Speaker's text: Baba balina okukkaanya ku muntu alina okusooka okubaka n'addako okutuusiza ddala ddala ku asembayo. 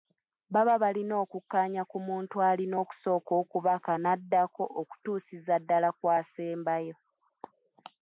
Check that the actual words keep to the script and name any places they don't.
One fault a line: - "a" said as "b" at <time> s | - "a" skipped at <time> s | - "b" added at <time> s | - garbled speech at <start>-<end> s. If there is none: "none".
- "ddala" skipped at 5.9 s